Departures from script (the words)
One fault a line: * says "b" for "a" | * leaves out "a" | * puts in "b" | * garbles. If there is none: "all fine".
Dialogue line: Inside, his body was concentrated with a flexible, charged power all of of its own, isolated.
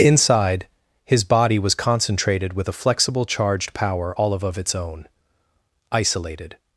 all fine